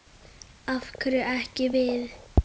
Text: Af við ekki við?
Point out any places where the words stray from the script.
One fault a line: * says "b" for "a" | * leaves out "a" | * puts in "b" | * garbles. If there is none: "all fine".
* says "hverju" for "við"